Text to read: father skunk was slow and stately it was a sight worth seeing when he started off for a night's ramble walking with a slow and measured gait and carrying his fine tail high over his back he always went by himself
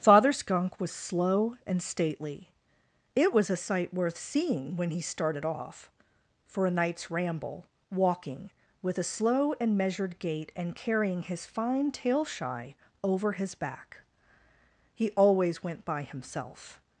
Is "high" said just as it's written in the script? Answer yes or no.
no